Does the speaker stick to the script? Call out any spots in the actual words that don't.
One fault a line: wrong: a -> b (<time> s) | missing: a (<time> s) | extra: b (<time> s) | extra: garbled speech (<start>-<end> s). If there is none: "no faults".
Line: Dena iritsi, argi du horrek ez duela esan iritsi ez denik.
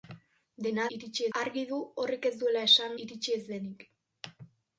no faults